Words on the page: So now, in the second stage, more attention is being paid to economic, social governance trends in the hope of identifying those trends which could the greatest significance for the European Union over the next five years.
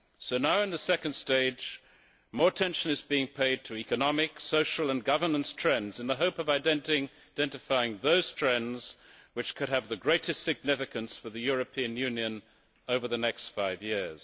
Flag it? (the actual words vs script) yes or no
yes